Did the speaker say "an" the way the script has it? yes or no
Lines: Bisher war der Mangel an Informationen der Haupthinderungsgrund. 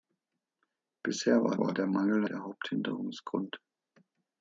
no